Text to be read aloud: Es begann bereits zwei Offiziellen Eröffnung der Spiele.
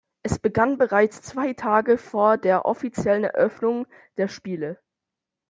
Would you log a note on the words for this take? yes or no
yes